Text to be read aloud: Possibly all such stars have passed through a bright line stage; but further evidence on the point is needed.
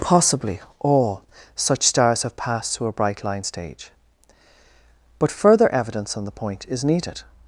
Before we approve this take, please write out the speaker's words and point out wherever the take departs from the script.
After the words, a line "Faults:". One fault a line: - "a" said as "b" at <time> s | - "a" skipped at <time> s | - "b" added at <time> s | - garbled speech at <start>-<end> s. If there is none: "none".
Possibly all such stars have passed through a bright line stage; but further evidence on the point is needed.
Faults:
none